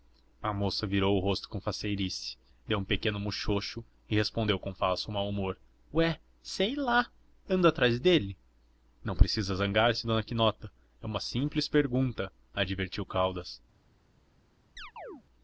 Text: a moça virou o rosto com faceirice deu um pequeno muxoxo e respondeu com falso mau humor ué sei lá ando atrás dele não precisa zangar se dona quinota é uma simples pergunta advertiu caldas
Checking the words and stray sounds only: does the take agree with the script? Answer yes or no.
no